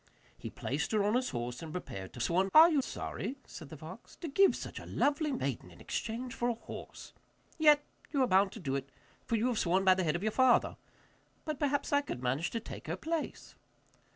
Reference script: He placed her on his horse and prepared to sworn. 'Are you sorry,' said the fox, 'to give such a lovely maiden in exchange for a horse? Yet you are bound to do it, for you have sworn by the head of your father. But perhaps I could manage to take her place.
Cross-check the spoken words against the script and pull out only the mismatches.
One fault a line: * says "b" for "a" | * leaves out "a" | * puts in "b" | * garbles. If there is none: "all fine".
all fine